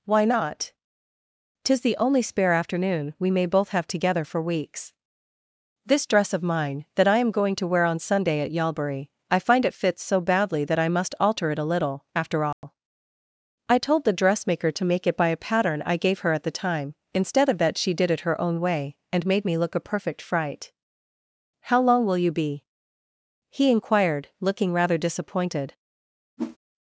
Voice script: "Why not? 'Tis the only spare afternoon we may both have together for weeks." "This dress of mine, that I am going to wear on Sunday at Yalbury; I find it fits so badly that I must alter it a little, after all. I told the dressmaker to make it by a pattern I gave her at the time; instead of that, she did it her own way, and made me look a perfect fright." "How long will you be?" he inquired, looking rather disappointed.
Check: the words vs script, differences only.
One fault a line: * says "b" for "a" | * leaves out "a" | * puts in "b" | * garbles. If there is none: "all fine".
all fine